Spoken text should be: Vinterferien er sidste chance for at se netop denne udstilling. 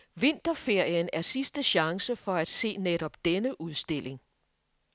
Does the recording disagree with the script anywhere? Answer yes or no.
no